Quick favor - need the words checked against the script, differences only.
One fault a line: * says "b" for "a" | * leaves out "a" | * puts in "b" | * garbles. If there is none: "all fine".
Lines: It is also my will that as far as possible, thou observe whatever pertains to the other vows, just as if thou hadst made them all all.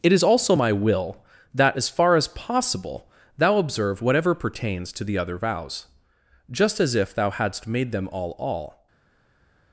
all fine